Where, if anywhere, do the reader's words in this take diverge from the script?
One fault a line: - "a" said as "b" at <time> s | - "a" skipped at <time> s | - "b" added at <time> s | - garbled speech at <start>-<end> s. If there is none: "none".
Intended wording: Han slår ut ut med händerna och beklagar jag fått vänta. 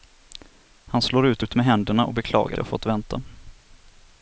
none